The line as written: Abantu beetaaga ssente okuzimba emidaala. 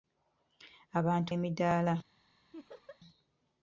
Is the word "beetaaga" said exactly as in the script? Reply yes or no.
no